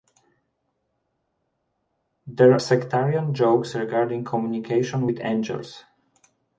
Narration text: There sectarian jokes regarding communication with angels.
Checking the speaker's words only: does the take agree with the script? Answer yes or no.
yes